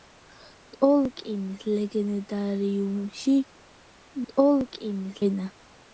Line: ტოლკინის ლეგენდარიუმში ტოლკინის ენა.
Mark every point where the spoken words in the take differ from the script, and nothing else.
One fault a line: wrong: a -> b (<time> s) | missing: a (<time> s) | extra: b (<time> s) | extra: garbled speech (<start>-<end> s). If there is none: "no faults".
no faults